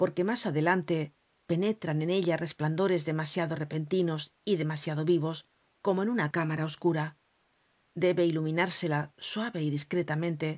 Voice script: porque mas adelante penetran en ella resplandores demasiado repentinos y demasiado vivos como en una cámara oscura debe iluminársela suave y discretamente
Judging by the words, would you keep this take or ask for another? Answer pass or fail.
pass